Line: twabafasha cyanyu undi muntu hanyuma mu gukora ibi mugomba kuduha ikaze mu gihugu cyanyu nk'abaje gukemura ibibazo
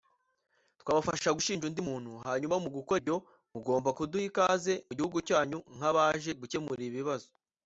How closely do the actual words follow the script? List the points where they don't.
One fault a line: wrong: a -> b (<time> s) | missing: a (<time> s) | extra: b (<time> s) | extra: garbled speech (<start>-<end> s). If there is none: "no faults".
wrong: cyanyu -> gushinja (1.3 s)
wrong: ibi -> ibyo (3.0 s)